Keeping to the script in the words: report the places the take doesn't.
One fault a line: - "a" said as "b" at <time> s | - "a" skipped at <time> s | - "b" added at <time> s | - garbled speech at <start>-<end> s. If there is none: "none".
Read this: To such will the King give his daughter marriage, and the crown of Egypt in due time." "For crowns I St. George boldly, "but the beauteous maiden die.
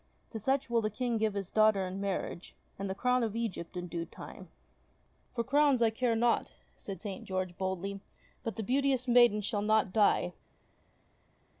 - "in" added at 1.9 s
- "care not said" added at 5.9 s
- "shall not" added at 9.4 s